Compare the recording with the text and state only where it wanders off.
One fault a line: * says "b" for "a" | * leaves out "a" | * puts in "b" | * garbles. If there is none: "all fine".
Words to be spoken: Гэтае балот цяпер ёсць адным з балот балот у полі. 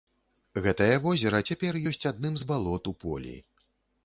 * says "возера" for "балот"
* leaves out "балот"